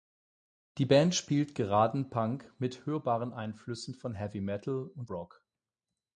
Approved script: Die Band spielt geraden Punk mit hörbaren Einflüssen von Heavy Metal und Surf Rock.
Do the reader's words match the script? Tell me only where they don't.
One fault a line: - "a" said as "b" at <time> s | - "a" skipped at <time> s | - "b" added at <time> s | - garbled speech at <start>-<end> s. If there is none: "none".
- "Surf" skipped at 5.1 s